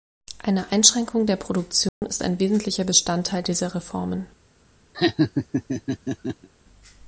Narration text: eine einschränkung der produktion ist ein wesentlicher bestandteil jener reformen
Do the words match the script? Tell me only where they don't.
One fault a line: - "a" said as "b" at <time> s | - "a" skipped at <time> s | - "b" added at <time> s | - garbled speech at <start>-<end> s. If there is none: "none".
- "jener" said as "dieser" at 3.4 s